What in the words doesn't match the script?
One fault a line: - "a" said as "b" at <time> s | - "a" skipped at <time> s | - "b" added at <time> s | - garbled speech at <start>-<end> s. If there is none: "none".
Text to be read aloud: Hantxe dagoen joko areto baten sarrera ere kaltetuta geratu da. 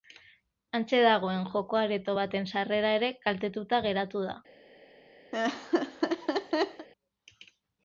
none